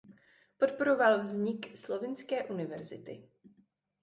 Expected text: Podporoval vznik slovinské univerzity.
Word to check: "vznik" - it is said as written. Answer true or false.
true